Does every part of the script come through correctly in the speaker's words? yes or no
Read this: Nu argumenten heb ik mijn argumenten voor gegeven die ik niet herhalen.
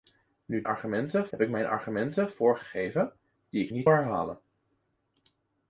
yes